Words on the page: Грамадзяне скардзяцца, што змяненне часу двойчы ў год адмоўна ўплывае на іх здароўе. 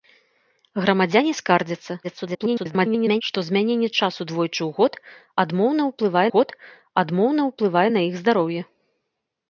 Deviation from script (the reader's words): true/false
true